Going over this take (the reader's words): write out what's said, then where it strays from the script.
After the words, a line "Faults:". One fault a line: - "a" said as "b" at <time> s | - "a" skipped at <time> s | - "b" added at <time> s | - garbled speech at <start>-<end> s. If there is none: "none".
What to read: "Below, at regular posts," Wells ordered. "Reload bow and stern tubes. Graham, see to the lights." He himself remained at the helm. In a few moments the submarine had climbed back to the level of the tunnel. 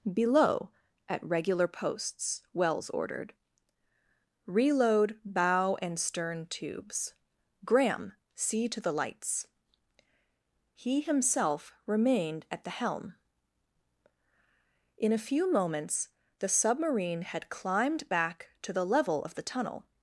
"Below, at regular posts," Wells ordered. "Reload bow and stern tubes. Graham, see to the lights." He himself remained at the helm. In a few moments the submarine had climbed back to the level of the tunnel.
Faults:
none